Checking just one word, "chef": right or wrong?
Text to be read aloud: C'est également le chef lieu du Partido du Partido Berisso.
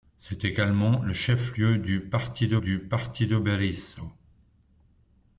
right